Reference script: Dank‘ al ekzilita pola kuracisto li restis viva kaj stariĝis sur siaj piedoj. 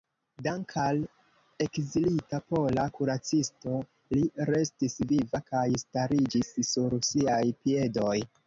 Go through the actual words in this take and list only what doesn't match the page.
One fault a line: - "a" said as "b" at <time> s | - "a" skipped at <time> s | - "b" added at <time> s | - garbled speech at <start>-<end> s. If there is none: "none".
none